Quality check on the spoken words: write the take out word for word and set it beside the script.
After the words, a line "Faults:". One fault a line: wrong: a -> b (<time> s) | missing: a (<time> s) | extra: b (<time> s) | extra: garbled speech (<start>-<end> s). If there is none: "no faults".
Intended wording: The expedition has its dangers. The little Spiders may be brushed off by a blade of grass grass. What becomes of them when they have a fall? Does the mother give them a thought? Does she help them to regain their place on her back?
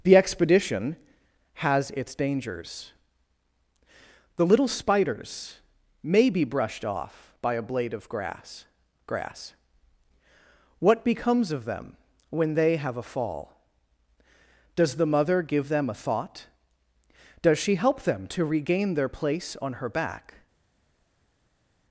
The expedition has its dangers. The little Spiders may be brushed off by a blade of grass grass. What becomes of them when they have a fall? Does the mother give them a thought? Does she help them to regain their place on her back?
Faults:
no faults